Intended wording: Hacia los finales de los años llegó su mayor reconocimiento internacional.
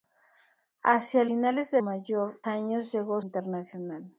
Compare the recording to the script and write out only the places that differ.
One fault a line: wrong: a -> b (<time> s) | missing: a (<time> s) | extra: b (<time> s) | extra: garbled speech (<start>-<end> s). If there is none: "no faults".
missing: los (1.2 s)
wrong: los -> mayor (1.8 s)
missing: su mayor reconocimiento (3.2 s)